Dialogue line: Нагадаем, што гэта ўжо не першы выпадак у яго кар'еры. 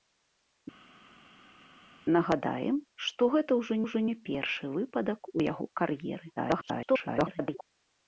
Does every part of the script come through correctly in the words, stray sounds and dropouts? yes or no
no